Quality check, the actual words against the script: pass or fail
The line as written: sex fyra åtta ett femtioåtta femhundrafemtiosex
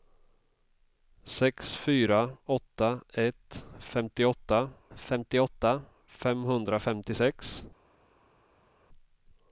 fail